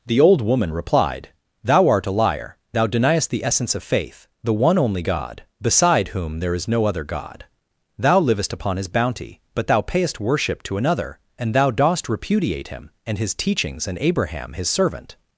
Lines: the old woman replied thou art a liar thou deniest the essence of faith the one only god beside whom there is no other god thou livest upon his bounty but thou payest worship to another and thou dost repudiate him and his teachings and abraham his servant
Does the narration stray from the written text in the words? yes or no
no